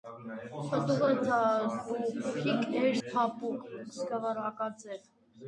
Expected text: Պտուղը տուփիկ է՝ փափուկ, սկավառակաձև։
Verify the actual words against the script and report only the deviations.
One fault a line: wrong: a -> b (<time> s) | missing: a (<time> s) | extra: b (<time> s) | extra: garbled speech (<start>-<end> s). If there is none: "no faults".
no faults